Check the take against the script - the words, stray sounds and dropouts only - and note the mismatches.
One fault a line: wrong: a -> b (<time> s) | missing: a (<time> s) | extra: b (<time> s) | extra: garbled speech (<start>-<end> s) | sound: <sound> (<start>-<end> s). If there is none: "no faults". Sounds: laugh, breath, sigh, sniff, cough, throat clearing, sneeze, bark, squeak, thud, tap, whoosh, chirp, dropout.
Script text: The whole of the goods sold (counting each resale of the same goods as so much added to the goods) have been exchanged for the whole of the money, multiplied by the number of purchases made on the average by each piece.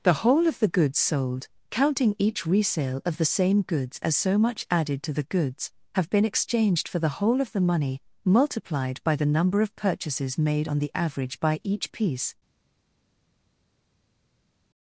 no faults